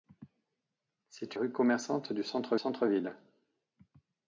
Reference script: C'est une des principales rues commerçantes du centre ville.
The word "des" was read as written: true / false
false